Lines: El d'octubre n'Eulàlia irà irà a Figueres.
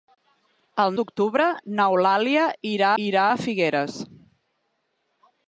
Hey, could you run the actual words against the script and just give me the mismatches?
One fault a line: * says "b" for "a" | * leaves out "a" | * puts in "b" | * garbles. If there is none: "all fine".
all fine